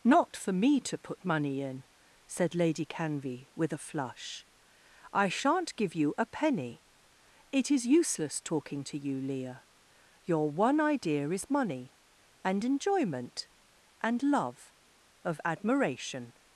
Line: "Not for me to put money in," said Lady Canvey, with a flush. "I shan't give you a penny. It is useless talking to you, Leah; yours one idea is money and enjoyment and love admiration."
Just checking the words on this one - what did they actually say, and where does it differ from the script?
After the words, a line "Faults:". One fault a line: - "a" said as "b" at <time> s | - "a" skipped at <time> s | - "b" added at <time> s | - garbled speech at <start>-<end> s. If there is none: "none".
"Not for me to put money in," said Lady Canvey, with a flush. "I shan't give you a penny. It is useless talking to you, Leah; your one idea is money and enjoyment and love of admiration."
Faults:
- "yours" said as "your" at 10.2 s
- "of" added at 15.2 s